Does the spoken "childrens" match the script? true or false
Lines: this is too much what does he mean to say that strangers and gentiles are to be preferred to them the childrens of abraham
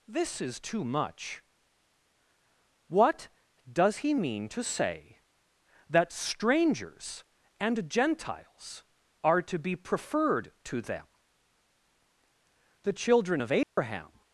false